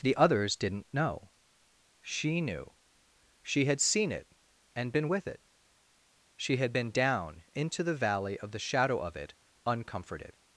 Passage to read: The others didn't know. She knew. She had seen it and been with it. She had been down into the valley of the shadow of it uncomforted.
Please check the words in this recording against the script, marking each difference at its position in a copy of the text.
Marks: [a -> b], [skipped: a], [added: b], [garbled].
The others didn't know. She knew. She had seen it and been with it. She had been down into the valley of the shadow of it uncomforted.